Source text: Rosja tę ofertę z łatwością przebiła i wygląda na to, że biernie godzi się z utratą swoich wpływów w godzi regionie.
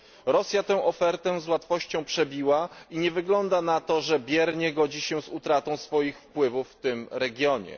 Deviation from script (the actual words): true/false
true